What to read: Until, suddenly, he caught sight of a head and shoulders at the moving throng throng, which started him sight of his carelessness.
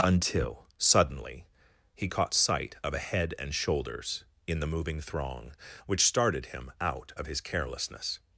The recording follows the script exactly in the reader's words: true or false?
false